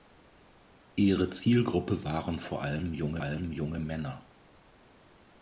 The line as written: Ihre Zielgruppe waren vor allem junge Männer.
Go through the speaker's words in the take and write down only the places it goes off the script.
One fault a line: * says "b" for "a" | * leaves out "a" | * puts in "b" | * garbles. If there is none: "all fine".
* puts in "allem junge"